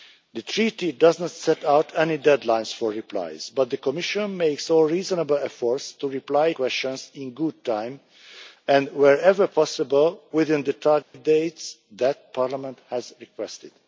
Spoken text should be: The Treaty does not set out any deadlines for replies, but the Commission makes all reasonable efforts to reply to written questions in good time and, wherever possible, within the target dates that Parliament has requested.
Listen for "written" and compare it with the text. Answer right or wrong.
wrong